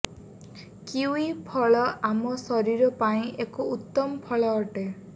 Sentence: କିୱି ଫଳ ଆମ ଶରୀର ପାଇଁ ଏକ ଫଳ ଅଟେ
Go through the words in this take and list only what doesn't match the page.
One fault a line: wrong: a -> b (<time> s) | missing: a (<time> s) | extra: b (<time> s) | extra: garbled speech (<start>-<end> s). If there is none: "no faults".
extra: ଉତ୍ତମ (3.8 s)